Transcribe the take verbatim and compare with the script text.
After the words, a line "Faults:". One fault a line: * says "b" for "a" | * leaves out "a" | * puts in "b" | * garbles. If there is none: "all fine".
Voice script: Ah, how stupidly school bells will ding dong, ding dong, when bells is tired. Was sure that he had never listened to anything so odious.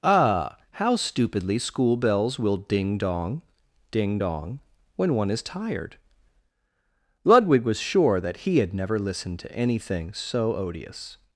Ah, how stupidly school bells will ding dong, ding dong, when one is tired. Ludwig was sure that he had never listened to anything so odious.
Faults:
* says "one" for "bells"
* puts in "Ludwig"